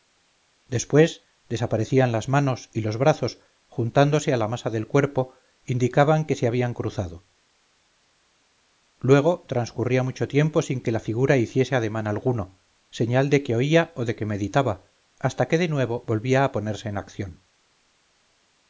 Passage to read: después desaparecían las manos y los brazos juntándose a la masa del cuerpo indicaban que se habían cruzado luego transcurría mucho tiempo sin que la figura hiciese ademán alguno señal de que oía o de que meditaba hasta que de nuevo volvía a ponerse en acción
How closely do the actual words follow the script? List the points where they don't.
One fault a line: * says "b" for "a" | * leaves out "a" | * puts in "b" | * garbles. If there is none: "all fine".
all fine